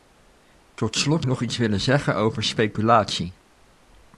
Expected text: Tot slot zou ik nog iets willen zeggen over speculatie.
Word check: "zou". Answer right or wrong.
wrong